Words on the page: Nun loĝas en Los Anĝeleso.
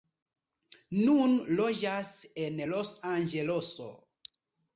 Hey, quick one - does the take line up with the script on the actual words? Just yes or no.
yes